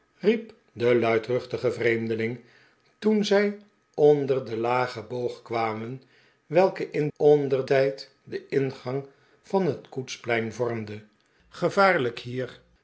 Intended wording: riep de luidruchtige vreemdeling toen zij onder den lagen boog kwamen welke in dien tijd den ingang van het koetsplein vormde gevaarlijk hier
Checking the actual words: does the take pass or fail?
fail